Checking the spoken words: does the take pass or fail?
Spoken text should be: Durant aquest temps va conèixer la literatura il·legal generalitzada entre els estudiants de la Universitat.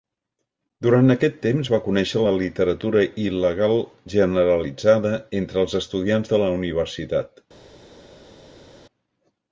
pass